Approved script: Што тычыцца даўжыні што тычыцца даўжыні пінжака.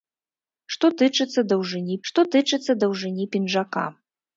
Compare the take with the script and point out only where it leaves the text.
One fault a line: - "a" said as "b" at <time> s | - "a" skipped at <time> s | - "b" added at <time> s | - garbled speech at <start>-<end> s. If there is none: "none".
none